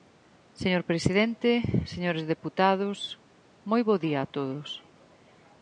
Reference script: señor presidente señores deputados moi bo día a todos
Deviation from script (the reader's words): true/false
false